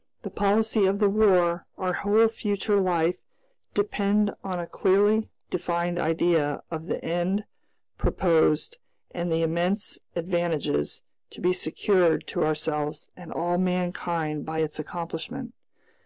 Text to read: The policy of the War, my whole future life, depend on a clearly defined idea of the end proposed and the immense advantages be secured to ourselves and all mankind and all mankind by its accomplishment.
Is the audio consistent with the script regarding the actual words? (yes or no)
no